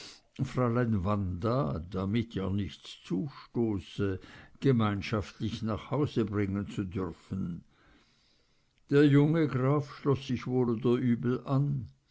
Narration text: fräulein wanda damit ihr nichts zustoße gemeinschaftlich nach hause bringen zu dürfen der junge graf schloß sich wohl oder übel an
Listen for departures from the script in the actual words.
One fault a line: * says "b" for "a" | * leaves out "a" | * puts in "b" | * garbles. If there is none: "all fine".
all fine